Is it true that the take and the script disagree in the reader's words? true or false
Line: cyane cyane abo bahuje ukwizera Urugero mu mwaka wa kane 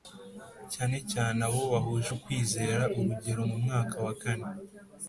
false